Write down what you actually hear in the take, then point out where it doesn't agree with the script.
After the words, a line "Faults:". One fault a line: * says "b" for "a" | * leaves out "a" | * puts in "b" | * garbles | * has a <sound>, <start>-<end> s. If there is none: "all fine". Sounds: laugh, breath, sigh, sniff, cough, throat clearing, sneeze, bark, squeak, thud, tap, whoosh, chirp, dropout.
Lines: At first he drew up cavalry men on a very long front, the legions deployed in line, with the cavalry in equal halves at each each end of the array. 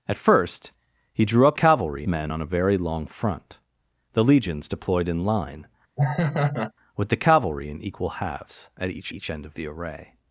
At first he drew up cavalry men on a very long front, the legions deployed in line, with the cavalry in equal halves at each each end of the array.
Faults:
* has a laugh, 6.0-6.7 s